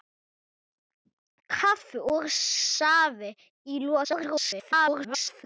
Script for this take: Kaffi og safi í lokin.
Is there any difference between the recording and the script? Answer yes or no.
yes